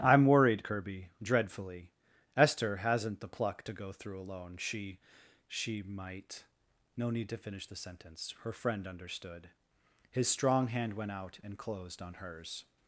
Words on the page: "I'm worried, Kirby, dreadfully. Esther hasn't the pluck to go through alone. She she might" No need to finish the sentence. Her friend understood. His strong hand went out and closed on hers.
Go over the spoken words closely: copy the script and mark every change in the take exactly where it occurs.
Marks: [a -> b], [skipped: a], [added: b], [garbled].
"I'm worried, Kirby, dreadfully. Esther hasn't the pluck to go through alone. She she might" No need to finish the sentence. Her friend understood. His strong hand went out and closed on hers.